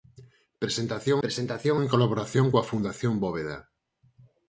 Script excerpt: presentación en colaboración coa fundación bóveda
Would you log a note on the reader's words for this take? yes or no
yes